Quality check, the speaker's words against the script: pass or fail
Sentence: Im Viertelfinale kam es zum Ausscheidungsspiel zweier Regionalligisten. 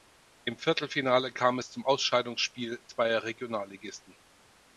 pass